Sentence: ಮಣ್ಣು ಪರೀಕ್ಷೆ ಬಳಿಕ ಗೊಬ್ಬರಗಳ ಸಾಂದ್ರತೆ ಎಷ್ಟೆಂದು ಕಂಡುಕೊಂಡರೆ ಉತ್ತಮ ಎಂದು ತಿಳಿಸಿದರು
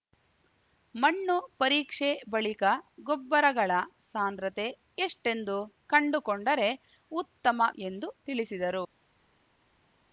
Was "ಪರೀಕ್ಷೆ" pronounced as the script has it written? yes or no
yes